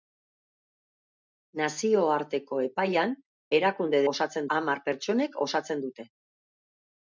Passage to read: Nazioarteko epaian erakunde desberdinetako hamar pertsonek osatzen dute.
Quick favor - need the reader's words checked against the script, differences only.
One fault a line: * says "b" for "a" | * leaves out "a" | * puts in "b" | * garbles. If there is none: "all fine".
* says "osatzen" for "desberdinetako"